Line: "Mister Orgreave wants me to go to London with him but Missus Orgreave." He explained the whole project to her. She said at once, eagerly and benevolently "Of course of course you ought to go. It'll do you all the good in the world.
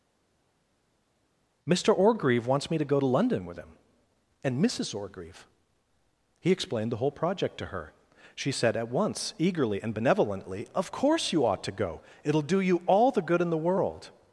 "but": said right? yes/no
no